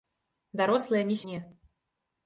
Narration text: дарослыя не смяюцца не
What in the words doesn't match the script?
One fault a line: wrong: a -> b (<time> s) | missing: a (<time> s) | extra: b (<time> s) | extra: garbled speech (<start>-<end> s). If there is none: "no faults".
missing: смяюцца (1.2 s)